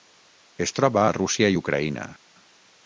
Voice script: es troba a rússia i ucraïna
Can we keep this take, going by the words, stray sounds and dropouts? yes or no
yes